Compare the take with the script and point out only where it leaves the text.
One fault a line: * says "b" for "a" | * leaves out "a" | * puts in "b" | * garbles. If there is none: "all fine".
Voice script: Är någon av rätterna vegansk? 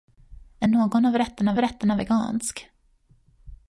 * puts in "rätterna"